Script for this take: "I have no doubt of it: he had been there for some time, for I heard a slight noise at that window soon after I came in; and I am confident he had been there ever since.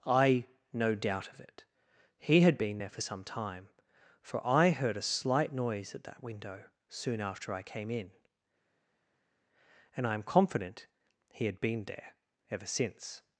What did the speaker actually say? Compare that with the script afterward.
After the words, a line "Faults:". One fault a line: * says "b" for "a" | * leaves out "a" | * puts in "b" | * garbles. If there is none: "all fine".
"I no doubt of it: he had been there for some time, for I heard a slight noise at that window soon after I came in; and I am confident he had been there ever since.
Faults:
* leaves out "have"